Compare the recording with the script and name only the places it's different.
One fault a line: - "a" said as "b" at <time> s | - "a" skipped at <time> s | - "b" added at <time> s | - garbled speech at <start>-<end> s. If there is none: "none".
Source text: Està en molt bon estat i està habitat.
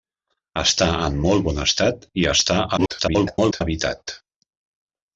- garbled speech at 2.8-3.6 s